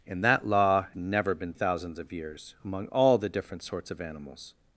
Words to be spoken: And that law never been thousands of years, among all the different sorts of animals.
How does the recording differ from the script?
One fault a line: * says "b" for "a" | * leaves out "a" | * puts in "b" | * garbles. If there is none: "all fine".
all fine